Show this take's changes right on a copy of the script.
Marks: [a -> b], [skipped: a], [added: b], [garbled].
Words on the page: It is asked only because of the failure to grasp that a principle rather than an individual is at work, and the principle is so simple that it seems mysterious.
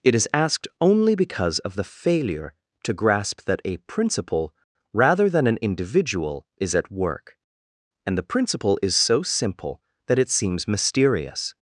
It is asked only because of the failure to grasp that a principle rather than an individual is at work, and the principle is so simple that it seems mysterious.